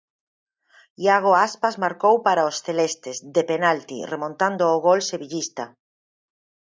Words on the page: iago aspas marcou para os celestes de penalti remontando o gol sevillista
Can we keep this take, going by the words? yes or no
yes